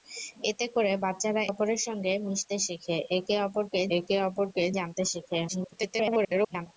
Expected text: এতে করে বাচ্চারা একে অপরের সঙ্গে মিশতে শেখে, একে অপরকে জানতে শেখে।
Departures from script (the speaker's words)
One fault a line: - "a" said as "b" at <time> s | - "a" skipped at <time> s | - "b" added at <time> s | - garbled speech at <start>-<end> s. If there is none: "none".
- "একে" skipped at 1.4 s
- "একে অপরকে" added at 4.0 s
- garbled speech at 5.5-6.7 s